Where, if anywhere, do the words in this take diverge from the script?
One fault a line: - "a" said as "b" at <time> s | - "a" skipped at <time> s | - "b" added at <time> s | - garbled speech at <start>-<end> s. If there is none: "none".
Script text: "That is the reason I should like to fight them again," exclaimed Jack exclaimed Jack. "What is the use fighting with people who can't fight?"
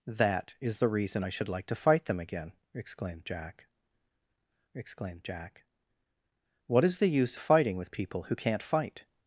none